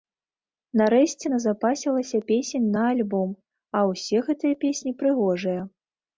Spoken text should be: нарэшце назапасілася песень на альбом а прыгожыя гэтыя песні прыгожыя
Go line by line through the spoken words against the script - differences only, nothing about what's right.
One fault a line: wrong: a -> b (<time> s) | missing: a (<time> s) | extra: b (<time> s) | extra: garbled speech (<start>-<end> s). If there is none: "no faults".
wrong: прыгожыя -> ўсе (3.9 s)